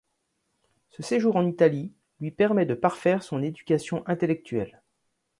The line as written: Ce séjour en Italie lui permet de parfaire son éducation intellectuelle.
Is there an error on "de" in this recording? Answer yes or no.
no